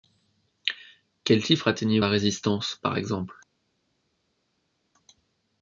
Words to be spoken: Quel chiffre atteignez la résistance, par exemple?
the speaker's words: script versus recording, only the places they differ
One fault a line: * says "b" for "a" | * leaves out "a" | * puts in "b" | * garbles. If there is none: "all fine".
all fine